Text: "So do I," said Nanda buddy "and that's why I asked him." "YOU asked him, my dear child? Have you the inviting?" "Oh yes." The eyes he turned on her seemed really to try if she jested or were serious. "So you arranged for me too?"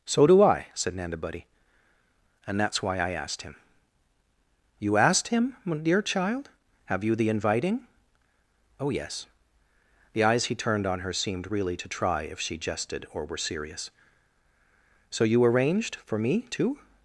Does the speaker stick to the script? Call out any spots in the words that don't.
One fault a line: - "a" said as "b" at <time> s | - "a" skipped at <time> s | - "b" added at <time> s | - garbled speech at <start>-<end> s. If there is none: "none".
none